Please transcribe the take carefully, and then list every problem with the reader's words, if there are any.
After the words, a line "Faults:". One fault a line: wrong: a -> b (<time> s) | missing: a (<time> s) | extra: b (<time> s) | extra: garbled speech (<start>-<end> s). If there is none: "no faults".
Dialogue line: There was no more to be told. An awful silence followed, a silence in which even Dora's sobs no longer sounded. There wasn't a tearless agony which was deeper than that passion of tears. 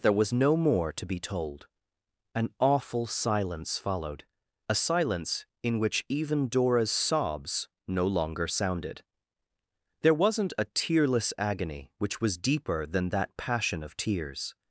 There was no more to be told. An awful silence followed, a silence in which even Dora's sobs no longer sounded. There wasn't a tearless agony which was deeper than that passion of tears.
Faults:
no faults